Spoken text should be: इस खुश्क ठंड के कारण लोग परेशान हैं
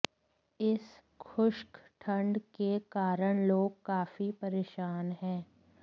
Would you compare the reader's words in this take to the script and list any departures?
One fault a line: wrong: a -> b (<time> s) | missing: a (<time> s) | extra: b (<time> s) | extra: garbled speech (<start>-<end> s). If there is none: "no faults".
extra: काफी (3.9 s)